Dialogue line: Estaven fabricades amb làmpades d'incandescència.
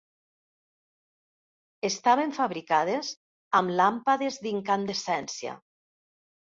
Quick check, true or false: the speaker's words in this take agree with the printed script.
true